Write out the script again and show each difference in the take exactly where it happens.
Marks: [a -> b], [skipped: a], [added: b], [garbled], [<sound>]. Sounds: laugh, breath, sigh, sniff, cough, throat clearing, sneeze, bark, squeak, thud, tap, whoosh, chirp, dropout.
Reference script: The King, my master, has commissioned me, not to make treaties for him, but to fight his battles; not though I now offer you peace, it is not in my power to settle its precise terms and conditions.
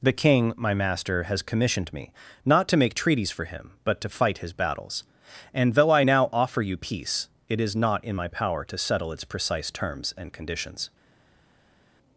The King, my master, has commissioned me, not to make treaties for him, but to fight his battles; [not -> and] though I now offer you peace, it is not in my power to settle its precise terms and conditions.